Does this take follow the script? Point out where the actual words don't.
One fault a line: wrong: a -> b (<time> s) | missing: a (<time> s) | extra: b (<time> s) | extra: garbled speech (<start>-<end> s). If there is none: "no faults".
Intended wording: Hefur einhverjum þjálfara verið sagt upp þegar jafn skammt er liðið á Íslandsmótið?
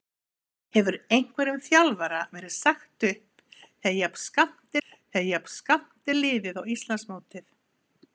extra: þegar jafn skammt (4.9 s)